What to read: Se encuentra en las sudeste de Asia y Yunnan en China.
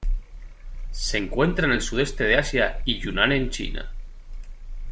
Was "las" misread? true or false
true